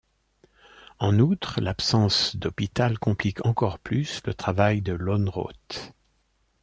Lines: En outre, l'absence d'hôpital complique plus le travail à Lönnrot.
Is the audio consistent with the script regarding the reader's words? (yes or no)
no